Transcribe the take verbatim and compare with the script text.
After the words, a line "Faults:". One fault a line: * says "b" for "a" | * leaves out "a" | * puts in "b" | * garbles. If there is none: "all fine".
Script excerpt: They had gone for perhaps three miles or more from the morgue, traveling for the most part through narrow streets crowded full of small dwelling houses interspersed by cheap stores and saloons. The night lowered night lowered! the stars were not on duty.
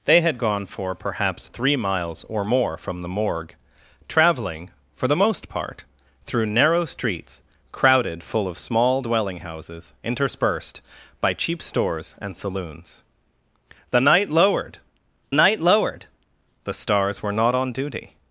They had gone for perhaps three miles or more from the morgue, traveling for the most part through narrow streets crowded full of small dwelling houses interspersed by cheap stores and saloons. The night lowered night lowered! the stars were not on duty.
Faults:
all fine